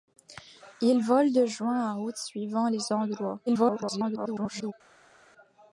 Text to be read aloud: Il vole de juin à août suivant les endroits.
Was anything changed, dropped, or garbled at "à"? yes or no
no